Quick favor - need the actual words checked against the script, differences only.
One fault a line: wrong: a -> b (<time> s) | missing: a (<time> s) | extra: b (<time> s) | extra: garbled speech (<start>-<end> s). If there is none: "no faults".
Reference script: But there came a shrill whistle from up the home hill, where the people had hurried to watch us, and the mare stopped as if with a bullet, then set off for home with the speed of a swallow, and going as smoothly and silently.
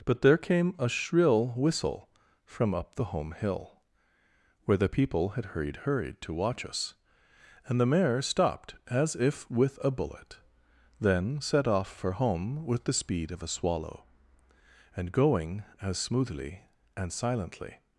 extra: hurried (5.9 s)